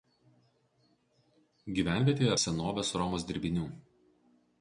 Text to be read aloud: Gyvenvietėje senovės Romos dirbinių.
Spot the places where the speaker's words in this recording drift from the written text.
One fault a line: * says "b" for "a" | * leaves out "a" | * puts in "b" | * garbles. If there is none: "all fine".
all fine